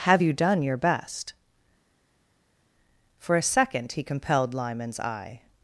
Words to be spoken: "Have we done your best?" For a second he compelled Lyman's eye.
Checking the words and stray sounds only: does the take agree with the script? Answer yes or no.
no